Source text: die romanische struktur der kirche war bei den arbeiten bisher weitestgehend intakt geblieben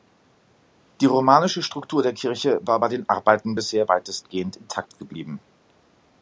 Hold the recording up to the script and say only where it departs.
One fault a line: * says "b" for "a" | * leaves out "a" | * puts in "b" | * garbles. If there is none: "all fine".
all fine